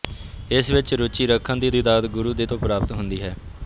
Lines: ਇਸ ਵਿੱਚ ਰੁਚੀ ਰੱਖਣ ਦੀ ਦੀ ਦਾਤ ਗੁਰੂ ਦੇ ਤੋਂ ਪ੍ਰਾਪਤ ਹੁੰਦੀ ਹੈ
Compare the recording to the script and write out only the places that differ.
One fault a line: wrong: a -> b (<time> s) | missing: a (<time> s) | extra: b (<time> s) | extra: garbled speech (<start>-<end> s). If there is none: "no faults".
no faults